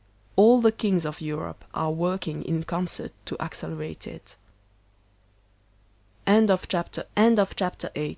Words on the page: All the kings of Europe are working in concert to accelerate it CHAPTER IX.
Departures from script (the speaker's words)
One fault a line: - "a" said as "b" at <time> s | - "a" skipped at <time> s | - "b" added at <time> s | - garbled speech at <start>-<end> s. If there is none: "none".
- "CHAPTER" added at 7.1 s